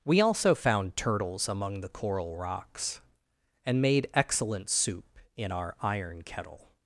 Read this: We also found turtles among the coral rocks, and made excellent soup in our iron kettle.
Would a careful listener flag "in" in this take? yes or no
no